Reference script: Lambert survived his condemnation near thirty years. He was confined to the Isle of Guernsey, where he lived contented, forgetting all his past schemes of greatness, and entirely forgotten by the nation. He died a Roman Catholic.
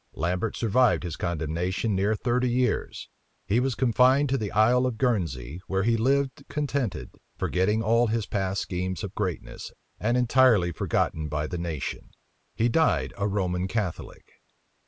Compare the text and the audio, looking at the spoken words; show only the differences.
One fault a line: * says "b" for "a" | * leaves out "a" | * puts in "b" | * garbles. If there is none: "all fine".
all fine